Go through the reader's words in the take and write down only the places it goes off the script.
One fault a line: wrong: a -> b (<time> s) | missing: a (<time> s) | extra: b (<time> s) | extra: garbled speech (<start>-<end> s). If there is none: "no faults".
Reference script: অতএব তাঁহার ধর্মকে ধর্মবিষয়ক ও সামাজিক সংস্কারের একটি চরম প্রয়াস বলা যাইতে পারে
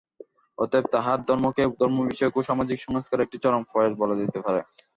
no faults